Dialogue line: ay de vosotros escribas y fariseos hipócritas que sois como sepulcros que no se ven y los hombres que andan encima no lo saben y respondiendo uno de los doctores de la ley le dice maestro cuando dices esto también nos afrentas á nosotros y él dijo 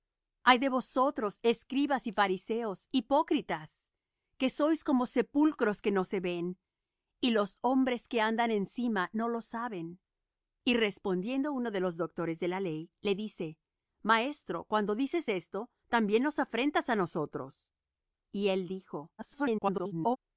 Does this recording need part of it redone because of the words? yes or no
yes